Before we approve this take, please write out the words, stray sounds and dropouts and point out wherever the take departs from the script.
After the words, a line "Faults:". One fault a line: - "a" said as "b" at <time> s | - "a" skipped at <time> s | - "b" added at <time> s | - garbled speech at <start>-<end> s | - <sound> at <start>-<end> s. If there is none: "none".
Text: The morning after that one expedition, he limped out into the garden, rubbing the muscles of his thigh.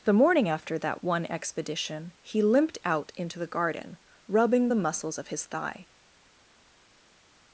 The morning after that one expedition, he limped out into the garden, rubbing the muscles of his thigh.
Faults:
none